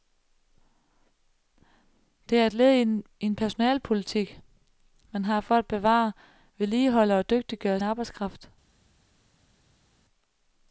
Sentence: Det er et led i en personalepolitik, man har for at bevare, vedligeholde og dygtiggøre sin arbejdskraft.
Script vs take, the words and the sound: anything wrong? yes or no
yes